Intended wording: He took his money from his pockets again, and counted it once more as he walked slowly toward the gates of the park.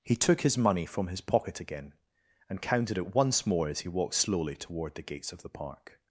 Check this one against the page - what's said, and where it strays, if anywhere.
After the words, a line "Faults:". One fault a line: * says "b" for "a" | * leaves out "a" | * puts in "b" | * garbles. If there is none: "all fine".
He took his money from his pocket again, and counted it once more as he walked slowly toward the gates of the park.
Faults:
* says "pocket" for "pockets"